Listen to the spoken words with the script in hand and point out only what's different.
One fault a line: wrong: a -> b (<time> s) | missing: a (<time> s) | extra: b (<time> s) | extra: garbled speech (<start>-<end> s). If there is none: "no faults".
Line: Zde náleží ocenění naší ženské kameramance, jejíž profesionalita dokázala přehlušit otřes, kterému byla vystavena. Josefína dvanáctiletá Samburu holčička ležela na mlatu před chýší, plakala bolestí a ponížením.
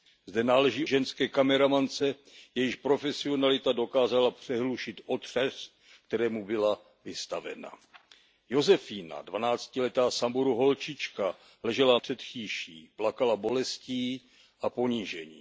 missing: ocenění naší (0.8 s)
missing: na mlatu (12.0 s)